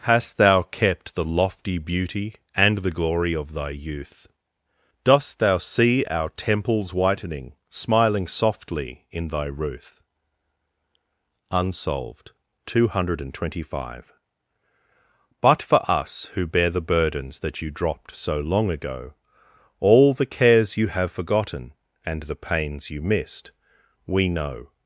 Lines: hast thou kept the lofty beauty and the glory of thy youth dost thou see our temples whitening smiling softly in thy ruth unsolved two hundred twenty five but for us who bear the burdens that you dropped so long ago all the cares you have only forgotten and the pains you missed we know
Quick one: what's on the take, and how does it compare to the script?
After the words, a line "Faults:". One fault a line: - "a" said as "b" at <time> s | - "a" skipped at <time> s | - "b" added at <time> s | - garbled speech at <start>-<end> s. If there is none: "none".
hast thou kept the lofty beauty and the glory of thy youth dost thou see our temples whitening smiling softly in thy ruth unsolved two hundred twenty five but for us who bear the burdens that you dropped so long ago all the cares you have forgotten and the pains you missed we know
Faults:
- "only" skipped at 21.1 s